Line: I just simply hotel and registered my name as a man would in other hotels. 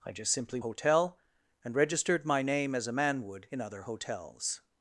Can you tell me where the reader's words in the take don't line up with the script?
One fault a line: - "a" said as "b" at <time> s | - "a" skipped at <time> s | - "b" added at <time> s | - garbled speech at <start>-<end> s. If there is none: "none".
none